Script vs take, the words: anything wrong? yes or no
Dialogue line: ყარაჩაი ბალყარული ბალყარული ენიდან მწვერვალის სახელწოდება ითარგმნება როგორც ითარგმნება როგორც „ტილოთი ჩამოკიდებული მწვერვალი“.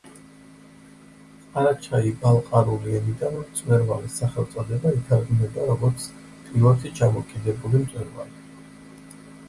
yes